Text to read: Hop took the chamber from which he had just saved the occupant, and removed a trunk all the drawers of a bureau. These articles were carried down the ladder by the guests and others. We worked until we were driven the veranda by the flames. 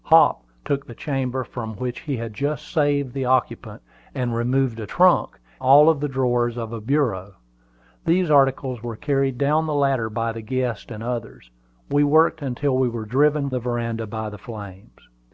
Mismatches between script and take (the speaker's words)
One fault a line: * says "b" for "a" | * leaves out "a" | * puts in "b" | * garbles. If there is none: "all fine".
all fine